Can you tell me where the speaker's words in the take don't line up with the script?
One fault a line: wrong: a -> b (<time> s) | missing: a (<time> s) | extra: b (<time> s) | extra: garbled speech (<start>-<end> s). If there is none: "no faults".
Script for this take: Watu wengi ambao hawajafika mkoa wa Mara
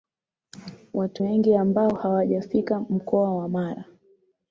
no faults